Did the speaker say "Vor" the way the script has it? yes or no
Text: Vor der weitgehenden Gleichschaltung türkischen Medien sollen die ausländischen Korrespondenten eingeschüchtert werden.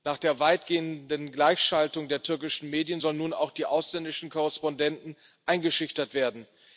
no